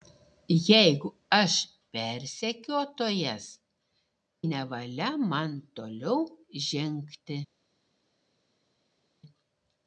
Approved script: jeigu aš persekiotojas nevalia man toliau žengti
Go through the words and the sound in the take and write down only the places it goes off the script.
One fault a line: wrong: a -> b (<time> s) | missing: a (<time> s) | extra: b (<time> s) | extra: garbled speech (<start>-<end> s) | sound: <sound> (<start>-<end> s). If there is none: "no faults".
no faults